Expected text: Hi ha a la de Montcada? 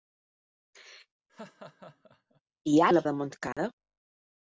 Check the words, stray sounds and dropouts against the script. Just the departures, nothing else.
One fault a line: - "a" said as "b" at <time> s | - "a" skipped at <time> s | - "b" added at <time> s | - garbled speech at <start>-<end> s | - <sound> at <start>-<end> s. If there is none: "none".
- laugh at 1.3-2.4 s
- dropout at 3.5-3.6 s